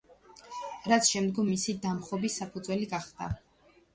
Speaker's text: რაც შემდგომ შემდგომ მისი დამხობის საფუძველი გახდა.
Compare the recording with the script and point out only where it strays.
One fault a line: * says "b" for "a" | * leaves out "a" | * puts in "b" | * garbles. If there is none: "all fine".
* leaves out "შემდგომ"